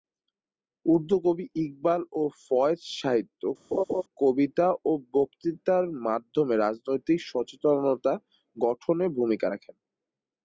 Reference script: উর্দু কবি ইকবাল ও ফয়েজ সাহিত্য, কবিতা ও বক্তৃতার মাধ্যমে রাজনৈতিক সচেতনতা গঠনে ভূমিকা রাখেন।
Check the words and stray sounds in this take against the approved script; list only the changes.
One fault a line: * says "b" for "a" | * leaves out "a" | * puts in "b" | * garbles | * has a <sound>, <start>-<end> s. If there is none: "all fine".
* has a laugh, 3.7-4.0 s